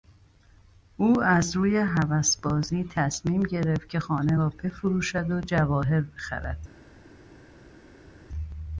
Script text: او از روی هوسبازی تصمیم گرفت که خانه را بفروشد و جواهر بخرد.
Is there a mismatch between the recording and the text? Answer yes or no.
no